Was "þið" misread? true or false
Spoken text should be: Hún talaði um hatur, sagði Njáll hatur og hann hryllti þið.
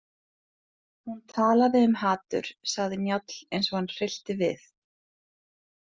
true